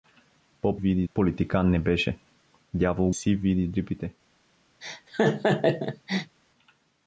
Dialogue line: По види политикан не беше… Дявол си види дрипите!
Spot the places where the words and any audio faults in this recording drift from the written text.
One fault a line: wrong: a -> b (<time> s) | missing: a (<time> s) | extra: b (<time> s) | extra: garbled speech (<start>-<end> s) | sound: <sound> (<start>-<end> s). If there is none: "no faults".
sound: laugh (4.8-6.4 s)